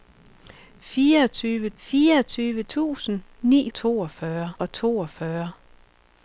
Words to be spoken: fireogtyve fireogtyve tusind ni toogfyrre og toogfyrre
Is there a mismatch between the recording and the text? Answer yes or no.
no